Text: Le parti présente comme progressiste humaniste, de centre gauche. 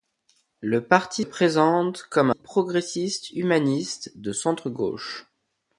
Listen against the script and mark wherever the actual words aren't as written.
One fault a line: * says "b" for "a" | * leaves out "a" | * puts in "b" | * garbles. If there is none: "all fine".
all fine